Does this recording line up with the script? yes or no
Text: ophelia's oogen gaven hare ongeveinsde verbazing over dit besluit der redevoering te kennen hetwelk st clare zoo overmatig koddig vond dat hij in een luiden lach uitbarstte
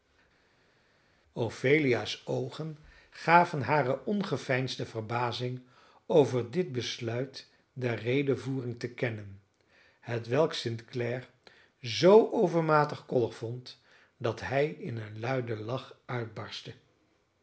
yes